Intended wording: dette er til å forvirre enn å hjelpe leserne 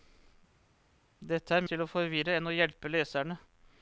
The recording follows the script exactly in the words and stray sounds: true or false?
true